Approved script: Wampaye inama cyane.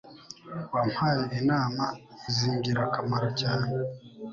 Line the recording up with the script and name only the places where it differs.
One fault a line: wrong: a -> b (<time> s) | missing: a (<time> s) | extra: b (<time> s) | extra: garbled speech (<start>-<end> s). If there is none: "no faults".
extra: zingirakamaro (2.3 s)